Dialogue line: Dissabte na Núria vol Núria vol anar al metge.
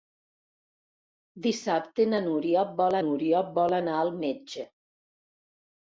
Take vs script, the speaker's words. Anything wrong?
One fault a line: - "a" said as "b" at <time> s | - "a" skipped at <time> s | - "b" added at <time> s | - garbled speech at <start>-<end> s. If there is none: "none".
none